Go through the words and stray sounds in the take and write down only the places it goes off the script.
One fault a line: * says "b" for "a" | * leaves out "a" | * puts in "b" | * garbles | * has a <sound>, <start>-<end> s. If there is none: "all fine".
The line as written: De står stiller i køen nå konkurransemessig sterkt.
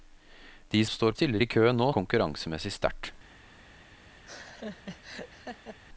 * has a laugh, 4.2-5.8 s